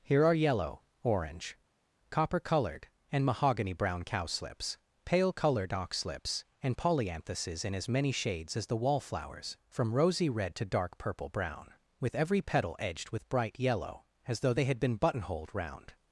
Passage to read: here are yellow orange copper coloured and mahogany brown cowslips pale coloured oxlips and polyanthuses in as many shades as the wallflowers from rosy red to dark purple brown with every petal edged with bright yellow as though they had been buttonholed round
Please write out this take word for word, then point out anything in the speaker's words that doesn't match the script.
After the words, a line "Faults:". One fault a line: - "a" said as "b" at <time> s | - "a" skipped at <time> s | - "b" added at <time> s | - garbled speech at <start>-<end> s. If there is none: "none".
here are yellow orange copper coloured and mahogany brown cowslips pale coloured oxlips and polyanthuses in as many shades as the wallflowers from rosy red to dark purple brown with every petal edged with bright yellow as though they had been buttonholed round
Faults:
none